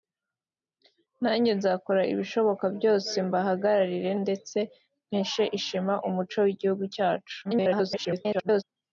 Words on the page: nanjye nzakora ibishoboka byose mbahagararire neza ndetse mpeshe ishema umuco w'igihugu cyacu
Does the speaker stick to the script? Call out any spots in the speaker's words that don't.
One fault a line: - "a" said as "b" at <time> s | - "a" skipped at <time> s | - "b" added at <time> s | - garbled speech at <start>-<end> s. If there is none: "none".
- "neza" skipped at 4.1 s
- garbled speech at 7.4-8.6 s